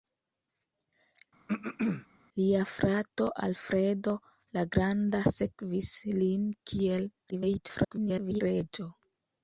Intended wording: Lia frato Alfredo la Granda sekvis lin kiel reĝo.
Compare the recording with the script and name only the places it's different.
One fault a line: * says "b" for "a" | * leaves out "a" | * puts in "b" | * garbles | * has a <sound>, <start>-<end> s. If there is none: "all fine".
* has a throat clearing, 1.5-2.1 s
* garbles